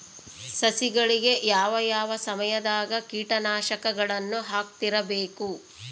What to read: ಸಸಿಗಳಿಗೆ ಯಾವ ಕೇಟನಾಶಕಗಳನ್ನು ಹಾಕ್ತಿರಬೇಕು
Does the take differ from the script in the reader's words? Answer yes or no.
yes